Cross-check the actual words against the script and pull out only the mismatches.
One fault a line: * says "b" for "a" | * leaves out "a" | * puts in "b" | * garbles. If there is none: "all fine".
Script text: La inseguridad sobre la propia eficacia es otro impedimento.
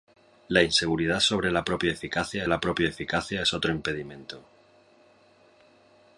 * puts in "la propia eficacia"